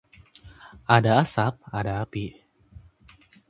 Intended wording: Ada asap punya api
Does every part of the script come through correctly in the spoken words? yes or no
no